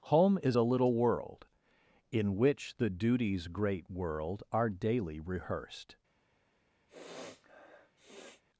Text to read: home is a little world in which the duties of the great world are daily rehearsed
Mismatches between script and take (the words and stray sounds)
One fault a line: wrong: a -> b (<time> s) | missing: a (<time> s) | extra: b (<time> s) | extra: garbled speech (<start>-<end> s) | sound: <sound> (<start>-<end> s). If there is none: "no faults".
missing: of the (3.5 s)
sound: sniff (6.9-8.4 s)